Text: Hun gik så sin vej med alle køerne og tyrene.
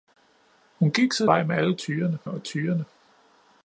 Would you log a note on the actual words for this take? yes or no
yes